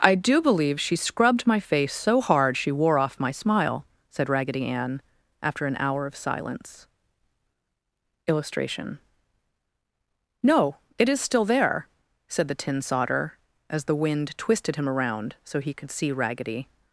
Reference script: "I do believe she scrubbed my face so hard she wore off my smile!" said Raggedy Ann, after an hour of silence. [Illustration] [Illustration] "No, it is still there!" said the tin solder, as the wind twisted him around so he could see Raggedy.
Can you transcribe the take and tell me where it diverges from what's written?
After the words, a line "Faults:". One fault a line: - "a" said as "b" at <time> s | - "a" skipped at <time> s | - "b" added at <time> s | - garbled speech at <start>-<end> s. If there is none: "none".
"I do believe she scrubbed my face so hard she wore off my smile!" said Raggedy Ann, after an hour of silence. [Illustration] "No, it is still there!" said the tin solder, as the wind twisted him around so he could see Raggedy.
Faults:
- "Illustration" skipped at 9.0 s